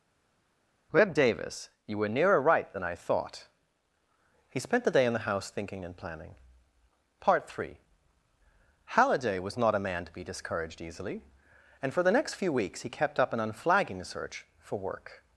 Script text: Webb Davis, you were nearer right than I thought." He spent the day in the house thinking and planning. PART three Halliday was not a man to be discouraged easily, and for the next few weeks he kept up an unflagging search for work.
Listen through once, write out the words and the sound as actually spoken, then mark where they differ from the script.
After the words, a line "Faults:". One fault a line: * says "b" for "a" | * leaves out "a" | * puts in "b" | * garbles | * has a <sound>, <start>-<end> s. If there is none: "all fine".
Webb Davis, you were nearer right than I thought." He spent the day in the house thinking and planning. PART three Halliday was not a man to be discouraged easily, and for the next few weeks he kept up an unflagging search for work.
Faults:
all fine